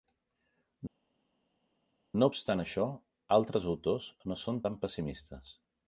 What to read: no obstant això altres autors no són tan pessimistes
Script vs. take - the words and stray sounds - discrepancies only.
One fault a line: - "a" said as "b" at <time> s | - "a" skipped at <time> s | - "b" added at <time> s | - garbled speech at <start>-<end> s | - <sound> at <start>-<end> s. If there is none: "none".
none